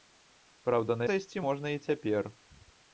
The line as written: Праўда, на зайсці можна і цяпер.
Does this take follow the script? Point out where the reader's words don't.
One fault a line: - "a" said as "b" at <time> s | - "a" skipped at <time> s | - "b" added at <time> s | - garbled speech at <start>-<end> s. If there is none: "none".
none